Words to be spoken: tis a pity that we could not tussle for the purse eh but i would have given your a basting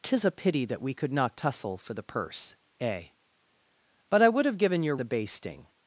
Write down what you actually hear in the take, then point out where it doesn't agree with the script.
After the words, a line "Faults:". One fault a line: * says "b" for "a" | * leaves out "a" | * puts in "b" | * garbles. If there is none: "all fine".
tis a pity that we could not tussle for the purse eh but i would have given your a basting
Faults:
all fine